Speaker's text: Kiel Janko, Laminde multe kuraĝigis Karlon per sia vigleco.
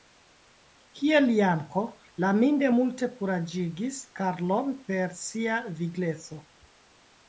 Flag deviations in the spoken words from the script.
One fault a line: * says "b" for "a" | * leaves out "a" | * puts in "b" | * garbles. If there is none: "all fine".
all fine